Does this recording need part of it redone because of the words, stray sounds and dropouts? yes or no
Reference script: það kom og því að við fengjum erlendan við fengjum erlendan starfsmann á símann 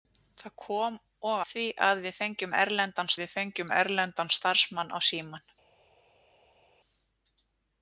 no